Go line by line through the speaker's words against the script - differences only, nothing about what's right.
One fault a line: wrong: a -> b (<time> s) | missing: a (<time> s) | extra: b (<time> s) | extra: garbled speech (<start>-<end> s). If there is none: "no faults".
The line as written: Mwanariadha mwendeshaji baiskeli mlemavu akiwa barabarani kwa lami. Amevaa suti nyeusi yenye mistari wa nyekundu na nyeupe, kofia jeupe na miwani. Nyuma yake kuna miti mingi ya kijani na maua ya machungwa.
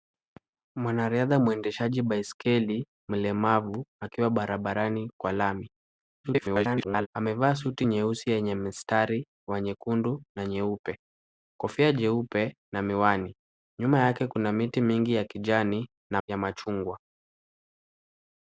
extra: garbled speech (6.2-7.1 s)
missing: maua (16.2 s)